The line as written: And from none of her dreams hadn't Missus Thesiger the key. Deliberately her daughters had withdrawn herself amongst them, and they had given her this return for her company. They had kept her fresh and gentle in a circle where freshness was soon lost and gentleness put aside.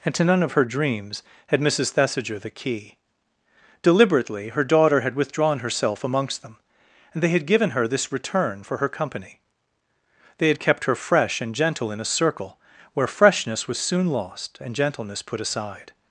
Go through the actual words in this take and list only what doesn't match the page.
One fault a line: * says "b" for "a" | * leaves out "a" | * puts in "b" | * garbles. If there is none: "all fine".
* says "to" for "from"
* says "had" for "hadn't"
* says "daughter" for "daughters"